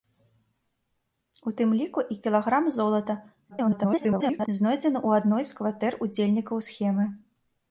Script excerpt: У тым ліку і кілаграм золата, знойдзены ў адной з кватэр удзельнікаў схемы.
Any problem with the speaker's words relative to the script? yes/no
yes